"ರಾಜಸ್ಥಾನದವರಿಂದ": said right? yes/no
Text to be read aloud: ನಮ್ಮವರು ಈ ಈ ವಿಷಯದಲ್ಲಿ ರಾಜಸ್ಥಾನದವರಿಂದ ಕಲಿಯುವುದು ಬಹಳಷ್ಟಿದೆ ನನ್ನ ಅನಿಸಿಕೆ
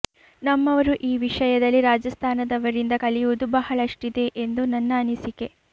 yes